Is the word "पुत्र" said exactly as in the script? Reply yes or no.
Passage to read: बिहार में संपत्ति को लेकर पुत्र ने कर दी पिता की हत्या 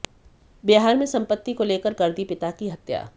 no